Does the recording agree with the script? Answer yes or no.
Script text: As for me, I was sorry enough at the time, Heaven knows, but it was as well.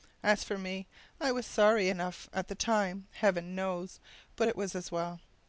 yes